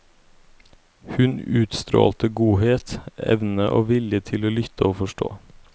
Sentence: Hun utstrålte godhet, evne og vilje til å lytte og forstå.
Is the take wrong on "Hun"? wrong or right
right